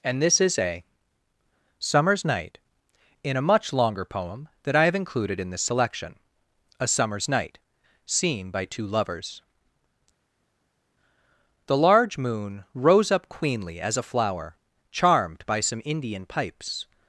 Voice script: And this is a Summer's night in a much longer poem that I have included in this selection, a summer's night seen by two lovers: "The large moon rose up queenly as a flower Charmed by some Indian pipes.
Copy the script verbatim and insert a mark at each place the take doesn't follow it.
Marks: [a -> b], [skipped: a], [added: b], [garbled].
And this is a Summer's night in a much longer poem that I have included in this selection, a summer's night seen by two lovers: "The large moon rose up queenly as a flower Charmed by some Indian pipes.